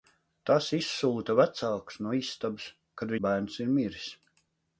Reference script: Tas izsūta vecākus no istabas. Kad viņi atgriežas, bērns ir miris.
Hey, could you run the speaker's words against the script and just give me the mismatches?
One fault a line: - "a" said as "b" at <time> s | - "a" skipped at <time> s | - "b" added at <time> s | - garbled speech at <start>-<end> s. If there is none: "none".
- "viņi atgriežas" skipped at 3.1 s